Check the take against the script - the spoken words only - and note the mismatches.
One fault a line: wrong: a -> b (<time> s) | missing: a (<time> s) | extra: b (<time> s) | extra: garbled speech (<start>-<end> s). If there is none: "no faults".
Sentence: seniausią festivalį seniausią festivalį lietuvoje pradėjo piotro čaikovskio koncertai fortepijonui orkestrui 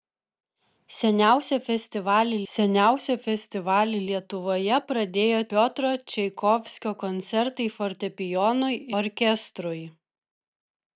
no faults